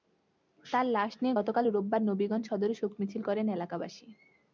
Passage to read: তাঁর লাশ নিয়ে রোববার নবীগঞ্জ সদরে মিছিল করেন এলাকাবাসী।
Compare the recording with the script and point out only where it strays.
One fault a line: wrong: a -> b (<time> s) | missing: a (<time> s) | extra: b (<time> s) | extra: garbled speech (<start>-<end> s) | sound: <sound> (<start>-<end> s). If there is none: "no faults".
extra: গতকাল (1.4 s)
extra: শোক (2.7 s)